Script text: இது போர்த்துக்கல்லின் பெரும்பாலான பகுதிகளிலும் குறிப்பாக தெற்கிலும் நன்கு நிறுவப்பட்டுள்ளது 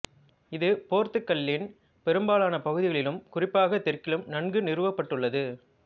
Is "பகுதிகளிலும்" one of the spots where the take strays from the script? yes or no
no